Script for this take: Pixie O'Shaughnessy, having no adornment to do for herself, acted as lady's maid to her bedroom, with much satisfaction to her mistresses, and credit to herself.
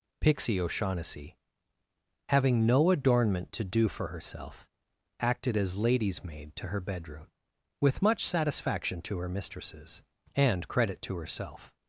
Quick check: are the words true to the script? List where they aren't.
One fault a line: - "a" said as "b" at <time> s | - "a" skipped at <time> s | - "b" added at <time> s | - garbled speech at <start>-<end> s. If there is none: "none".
none